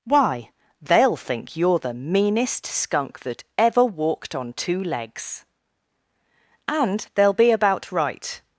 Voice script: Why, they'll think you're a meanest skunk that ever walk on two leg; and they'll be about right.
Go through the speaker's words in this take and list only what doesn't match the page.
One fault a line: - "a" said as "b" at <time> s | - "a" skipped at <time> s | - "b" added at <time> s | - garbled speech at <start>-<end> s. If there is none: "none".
- "a" said as "the" at 1.8 s
- "walk" said as "walked" at 3.8 s
- "leg" said as "legs" at 4.8 s